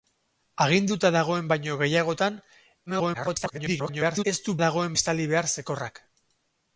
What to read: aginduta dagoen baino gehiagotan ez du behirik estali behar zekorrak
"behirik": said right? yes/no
no